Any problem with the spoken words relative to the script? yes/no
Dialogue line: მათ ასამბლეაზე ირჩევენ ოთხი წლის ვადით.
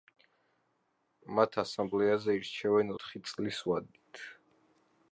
no